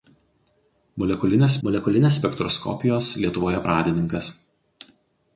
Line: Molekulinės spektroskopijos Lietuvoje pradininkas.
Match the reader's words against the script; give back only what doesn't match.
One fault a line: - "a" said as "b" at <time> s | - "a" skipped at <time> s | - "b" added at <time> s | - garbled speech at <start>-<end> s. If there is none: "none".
- "molekulinės" added at 1.7 s